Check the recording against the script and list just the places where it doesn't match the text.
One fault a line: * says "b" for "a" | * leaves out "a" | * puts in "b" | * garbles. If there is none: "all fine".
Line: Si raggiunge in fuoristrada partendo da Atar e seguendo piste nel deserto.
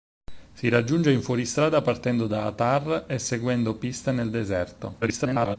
* garbles